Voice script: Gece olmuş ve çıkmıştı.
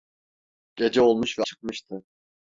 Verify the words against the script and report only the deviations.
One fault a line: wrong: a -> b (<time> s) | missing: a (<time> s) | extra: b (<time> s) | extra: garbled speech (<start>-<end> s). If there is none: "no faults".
no faults